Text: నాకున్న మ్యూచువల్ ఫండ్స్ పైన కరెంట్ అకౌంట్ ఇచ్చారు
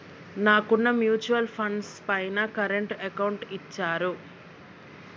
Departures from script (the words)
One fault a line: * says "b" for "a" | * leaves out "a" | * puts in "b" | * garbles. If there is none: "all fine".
all fine